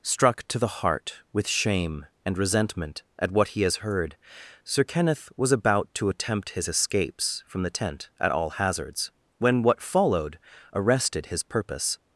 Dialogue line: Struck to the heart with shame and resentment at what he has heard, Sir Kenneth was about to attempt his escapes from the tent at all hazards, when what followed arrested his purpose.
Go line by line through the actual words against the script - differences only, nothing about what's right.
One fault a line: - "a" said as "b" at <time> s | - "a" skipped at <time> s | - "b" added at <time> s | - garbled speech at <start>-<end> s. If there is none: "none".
none